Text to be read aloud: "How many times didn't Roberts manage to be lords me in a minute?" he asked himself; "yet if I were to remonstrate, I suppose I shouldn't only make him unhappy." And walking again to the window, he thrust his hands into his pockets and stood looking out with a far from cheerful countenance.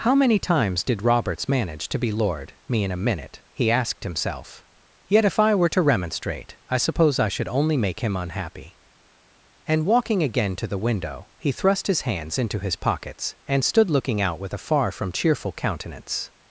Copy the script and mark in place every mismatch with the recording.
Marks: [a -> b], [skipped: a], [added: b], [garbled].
"How many times [didn't -> did] Roberts manage to be [lords -> lord] me in a minute?" he asked himself; "yet if I were to remonstrate, I suppose I [shouldn't -> should] only make him unhappy." And walking again to the window, he thrust his hands into his pockets and stood looking out with a far from cheerful countenance.